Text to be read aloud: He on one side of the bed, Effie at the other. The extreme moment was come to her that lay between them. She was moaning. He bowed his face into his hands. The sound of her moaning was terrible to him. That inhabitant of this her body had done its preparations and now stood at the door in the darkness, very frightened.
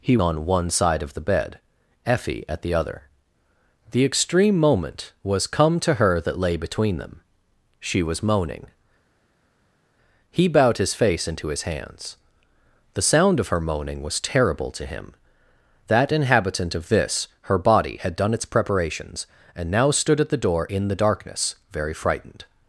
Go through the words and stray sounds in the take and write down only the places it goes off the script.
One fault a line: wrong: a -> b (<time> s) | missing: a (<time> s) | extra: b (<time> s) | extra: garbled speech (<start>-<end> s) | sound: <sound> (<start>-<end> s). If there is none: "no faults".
no faults